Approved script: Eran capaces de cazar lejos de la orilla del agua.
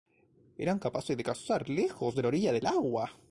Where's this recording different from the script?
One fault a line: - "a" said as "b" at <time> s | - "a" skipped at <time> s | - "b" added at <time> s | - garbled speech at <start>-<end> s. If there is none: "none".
none